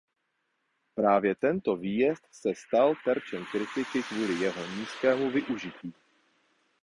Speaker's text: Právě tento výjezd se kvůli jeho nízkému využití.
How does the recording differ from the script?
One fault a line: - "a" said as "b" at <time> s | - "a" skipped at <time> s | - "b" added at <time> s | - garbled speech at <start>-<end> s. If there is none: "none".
- "stal terčem kritiky" added at 2.5 s